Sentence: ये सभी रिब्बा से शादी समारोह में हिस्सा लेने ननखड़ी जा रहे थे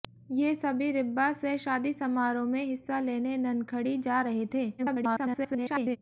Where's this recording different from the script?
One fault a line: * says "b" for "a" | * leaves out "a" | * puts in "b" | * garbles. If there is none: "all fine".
* garbles